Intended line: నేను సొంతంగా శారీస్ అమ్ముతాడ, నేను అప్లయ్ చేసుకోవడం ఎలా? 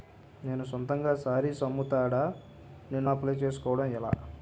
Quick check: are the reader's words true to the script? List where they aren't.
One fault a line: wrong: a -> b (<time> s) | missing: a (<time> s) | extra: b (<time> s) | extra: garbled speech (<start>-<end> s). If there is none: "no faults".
no faults